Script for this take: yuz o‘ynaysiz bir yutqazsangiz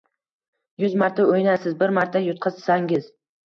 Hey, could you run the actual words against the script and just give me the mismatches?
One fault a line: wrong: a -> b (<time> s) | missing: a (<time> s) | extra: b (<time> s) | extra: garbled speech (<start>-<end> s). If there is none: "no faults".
extra: marta (1.0 s)
extra: marta (2.0 s)